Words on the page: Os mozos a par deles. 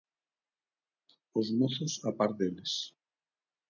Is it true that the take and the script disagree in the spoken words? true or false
false